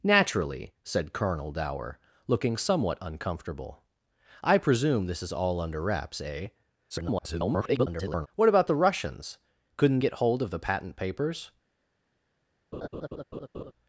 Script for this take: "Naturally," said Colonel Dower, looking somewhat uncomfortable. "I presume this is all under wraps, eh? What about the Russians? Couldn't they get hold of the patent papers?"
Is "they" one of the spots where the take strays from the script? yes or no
yes